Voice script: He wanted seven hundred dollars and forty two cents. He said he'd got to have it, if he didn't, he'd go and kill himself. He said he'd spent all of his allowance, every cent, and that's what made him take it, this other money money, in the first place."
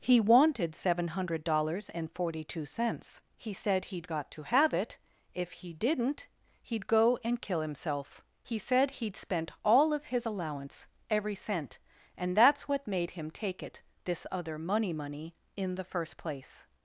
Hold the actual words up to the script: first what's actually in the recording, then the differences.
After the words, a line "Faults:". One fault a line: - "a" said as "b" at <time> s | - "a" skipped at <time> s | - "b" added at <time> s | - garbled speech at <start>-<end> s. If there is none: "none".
He wanted seven hundred dollars and forty two cents. He said he'd got to have it, if he didn't, he'd go and kill himself. He said he'd spent all of his allowance, every cent, and that's what made him take it, this other money money, in the first place."
Faults:
none